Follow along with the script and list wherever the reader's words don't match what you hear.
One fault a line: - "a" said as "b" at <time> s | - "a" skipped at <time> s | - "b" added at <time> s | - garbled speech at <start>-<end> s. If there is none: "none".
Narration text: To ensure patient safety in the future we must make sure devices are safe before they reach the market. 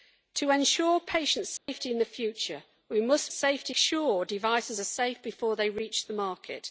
- "make" said as "safety" at 3.3 s